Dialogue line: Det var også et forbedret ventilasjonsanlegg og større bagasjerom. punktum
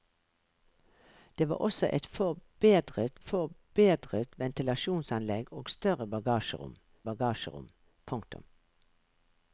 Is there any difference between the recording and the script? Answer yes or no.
yes